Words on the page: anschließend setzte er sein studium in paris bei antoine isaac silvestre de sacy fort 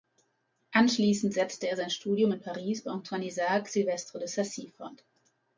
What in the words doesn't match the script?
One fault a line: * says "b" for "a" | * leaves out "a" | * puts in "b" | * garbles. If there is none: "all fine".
all fine